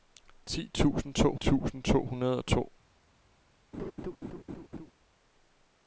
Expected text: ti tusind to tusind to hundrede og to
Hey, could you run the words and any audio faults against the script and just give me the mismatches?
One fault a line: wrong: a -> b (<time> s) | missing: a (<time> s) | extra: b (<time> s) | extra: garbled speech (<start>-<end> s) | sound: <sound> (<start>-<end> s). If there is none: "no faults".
sound: laugh (3.7-4.9 s)